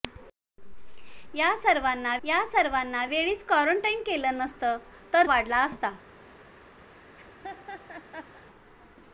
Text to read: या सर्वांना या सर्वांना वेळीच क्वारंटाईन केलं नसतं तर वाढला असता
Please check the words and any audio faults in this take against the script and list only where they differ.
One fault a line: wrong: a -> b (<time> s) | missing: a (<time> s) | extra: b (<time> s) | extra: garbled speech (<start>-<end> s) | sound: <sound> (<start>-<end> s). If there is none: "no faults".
sound: laugh (6.9-8.4 s)